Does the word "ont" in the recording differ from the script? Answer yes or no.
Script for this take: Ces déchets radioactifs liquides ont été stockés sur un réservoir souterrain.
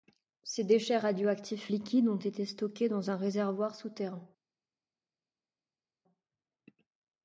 no